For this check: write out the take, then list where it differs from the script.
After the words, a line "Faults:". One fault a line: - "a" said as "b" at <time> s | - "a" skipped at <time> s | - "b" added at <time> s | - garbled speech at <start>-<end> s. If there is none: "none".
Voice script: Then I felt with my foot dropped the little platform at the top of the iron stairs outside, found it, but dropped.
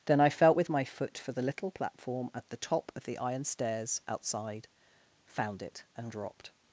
Then I felt with my foot for the little platform at the top of the iron stairs outside, found it, and dropped.
Faults:
- "dropped" said as "for" at 1.2 s
- "but" said as "and" at 6.0 s